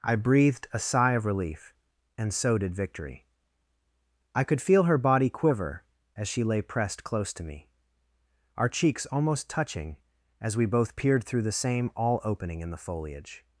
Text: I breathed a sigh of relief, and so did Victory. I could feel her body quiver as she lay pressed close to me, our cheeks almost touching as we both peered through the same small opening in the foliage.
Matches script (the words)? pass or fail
fail